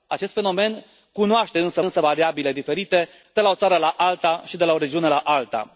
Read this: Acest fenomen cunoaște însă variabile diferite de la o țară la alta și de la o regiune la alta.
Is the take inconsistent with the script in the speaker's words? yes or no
yes